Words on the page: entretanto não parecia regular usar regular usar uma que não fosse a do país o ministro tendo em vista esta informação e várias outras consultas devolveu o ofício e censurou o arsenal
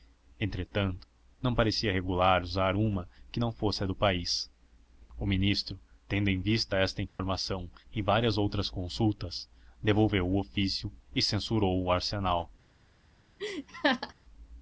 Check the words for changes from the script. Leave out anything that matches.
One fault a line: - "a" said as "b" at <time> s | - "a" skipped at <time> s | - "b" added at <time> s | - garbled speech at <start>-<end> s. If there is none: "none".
- "regular usar" skipped at 2.8 s